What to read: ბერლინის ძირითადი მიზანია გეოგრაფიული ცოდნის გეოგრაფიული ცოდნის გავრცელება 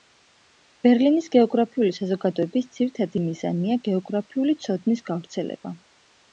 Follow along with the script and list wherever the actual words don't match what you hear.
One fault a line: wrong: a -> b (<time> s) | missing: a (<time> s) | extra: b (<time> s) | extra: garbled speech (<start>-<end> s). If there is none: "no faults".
extra: გეოგრაფიული საზოგადოების (1.4 s)
missing: გეოგრაფიული ცოდნის (5.1 s)